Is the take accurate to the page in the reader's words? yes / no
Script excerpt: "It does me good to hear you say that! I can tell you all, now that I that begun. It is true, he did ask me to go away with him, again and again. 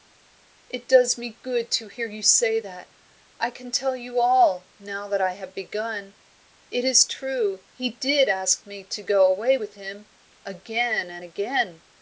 no